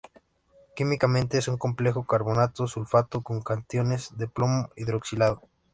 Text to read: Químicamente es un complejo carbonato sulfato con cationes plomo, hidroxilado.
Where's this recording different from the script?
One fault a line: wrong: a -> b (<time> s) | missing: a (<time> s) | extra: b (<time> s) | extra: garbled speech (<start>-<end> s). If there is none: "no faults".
extra: de (4.1 s)